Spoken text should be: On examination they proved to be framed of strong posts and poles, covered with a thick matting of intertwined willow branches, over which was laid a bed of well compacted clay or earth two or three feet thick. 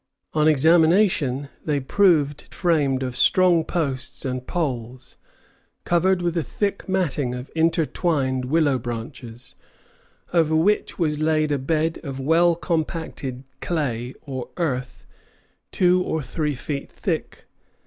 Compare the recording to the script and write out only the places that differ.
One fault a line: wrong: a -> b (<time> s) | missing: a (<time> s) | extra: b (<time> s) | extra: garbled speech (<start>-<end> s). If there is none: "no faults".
missing: to be (2.5 s)